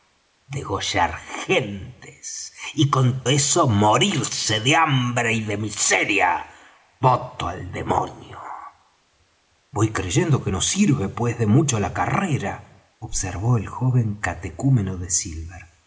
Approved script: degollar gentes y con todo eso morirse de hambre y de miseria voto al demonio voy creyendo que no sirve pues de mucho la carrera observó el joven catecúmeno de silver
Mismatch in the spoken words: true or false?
true